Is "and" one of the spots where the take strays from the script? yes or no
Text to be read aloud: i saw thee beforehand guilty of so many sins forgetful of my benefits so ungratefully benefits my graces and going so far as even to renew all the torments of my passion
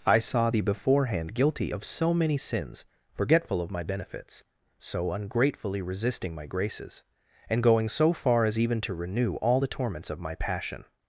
no